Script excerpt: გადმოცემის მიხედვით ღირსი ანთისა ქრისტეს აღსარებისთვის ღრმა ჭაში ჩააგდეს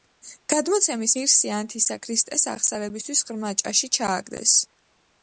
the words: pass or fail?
fail